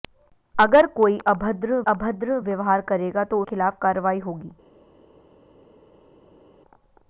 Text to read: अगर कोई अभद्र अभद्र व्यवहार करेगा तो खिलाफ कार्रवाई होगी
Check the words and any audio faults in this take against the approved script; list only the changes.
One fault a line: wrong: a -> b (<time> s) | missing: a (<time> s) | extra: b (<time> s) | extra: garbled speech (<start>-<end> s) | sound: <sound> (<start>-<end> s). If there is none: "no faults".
no faults